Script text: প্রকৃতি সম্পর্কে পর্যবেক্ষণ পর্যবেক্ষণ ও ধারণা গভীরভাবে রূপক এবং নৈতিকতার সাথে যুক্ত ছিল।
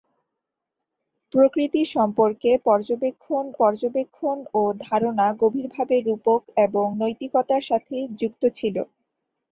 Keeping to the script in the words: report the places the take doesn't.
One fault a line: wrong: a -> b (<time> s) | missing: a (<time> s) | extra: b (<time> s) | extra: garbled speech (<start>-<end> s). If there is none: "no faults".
no faults